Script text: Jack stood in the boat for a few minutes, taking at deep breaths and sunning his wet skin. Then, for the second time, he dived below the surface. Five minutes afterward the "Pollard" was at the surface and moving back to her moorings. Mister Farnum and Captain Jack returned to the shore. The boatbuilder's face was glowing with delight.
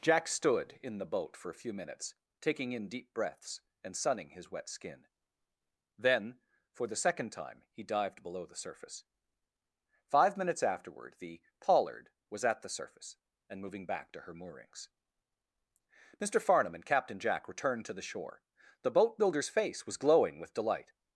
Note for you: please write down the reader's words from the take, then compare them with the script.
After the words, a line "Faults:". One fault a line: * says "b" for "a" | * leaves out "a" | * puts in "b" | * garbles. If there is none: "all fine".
Jack stood in the boat for a few minutes, taking in deep breaths and sunning his wet skin. Then, for the second time, he dived below the surface. Five minutes afterward the "Pollard" was at the surface and moving back to her moorings. Mister Farnum and Captain Jack returned to the shore. The boatbuilder's face was glowing with delight.
Faults:
* says "in" for "at"